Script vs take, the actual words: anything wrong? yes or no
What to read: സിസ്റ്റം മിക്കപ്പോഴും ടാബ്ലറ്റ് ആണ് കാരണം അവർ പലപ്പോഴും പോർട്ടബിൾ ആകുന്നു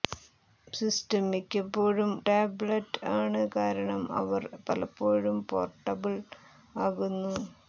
no